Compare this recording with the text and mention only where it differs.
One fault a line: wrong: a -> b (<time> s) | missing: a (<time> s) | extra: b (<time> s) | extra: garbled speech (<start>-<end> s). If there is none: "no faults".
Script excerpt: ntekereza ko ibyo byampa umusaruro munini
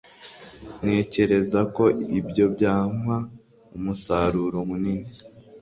no faults